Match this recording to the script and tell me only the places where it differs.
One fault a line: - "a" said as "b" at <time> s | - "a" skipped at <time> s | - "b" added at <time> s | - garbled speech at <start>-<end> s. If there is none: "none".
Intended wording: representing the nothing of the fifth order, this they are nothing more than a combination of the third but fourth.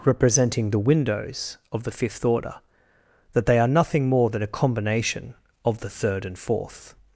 - "nothing" said as "windows" at 0.8 s
- "this" said as "that" at 3.3 s
- "but" said as "and" at 6.2 s